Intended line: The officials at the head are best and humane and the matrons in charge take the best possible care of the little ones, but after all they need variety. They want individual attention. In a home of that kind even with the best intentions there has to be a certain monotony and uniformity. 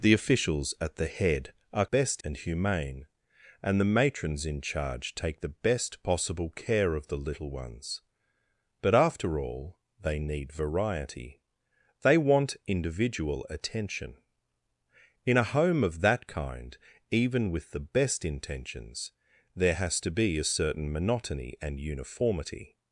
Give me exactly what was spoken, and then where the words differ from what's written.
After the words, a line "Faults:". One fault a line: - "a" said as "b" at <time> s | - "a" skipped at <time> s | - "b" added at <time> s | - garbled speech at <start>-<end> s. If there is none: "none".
The officials at the head are best and humane and the matrons in charge take the best possible care of the little ones, but after all they need variety. They want individual attention. In a home of that kind even with the best intentions there has to be a certain monotony and uniformity.
Faults:
none